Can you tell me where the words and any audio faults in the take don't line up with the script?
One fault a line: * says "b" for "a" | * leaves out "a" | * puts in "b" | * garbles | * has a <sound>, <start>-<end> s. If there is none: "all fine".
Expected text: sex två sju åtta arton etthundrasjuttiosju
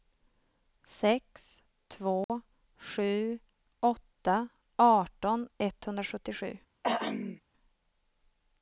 * has a dropout, 2.2-2.3 s
* has a throat clearing, 6.8-7.4 s